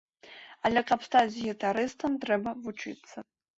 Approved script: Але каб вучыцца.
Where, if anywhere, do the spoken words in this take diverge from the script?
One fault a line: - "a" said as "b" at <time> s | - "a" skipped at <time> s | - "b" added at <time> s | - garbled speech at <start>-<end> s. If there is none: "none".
- "стаць гітарыстам трэба" added at 1.1 s